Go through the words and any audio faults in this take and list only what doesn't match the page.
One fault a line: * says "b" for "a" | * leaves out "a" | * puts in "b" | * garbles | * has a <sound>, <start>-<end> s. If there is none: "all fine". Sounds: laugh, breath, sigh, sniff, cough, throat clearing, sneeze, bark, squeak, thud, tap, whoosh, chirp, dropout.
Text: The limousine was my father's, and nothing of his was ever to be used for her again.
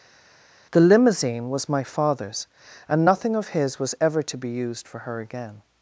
all fine